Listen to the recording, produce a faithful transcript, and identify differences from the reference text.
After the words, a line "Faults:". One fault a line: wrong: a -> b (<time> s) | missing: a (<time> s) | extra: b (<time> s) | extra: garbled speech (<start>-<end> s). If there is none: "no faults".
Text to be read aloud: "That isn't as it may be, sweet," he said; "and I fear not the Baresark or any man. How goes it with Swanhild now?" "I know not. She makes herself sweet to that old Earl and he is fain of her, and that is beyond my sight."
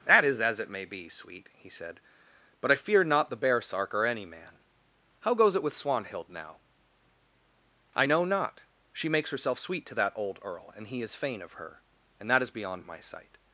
"That is as it may be, sweet," he said; "but I fear not the Baresark or any man. How goes it with Swanhild now?" "I know not. She makes herself sweet to that old Earl and he is fain of her, and that is beyond my sight."
Faults:
wrong: isn't -> is (0.2 s)
wrong: and -> but (2.6 s)